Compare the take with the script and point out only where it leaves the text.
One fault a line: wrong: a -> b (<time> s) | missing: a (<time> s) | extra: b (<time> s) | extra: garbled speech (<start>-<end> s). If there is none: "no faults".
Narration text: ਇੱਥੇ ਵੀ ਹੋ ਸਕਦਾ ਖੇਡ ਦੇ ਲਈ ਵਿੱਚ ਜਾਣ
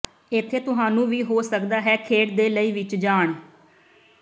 extra: ਤੁਹਾਨੂੰ (0.6 s)
extra: ਹੈ (1.8 s)